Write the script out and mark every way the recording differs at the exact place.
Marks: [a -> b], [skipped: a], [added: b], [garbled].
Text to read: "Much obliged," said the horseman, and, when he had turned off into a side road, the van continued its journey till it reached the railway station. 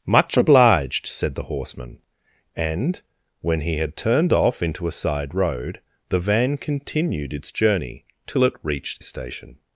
"Much obliged," said the horseman, and, when he had turned off into a side road, the van continued its journey till it reached [skipped: the railway] station.